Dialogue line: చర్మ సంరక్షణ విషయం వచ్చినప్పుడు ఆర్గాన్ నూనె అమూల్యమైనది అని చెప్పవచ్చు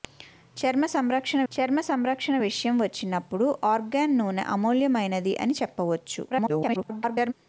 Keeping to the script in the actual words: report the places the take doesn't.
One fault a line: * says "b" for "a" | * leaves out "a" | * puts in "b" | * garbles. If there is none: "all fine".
* puts in "చర్మ సంరక్షణ"
* garbles